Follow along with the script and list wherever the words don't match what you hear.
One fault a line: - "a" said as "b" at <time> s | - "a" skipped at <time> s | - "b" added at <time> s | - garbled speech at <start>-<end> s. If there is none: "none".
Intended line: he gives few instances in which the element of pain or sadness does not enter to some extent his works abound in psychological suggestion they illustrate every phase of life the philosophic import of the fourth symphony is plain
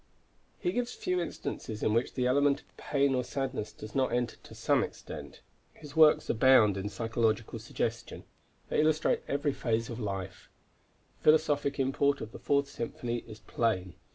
none